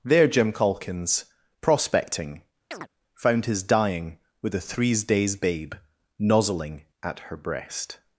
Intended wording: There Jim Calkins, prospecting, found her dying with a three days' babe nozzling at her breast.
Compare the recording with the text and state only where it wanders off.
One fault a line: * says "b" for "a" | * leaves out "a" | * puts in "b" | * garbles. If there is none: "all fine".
* says "his" for "her"
* says "threes" for "three"